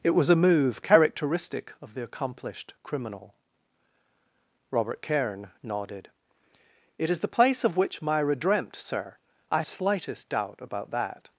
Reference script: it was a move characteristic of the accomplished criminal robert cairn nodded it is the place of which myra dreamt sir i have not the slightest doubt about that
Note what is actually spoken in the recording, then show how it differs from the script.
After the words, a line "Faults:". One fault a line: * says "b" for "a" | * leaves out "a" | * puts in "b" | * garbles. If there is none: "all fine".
it was a move characteristic of the accomplished criminal robert cairn nodded it is the place of which myra dreamt sir i slightest doubt about that
Faults:
* leaves out "have not the"